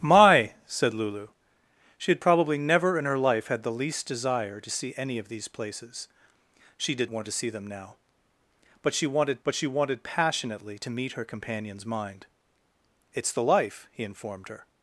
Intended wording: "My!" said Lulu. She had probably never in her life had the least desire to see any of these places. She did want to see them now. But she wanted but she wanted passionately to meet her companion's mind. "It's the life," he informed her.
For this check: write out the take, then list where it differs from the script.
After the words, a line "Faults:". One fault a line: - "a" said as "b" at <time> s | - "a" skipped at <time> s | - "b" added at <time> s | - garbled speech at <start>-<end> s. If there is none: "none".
"My!" said Lulu. She had probably never in her life had the least desire to see any of these places. She did want to see them now. But she wanted but she wanted passionately to meet her companion's mind. "It's the life," he informed her.
Faults:
none